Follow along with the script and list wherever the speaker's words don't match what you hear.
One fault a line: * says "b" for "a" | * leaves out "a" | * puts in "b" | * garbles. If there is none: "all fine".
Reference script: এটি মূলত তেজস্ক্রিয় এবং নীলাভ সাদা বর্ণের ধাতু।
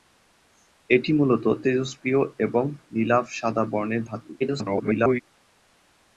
* garbles